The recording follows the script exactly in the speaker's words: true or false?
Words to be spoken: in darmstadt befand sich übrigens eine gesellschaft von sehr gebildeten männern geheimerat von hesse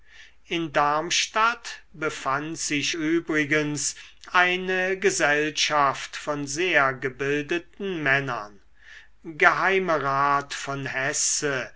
true